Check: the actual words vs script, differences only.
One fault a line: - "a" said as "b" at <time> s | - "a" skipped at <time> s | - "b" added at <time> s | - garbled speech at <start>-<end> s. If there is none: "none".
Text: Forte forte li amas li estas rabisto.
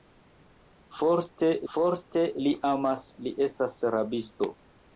none